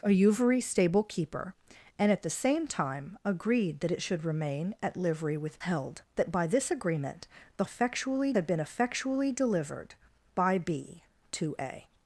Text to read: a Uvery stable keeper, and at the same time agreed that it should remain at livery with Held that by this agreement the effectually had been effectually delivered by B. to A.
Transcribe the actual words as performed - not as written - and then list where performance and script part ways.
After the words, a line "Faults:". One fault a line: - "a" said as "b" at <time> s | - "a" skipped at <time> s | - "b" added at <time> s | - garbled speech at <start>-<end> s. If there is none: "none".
a Uvery stable keeper, and at the same time agreed that it should remain at livery with Held that by this agreement the effectually had been effectually delivered by B. to A.
Faults:
none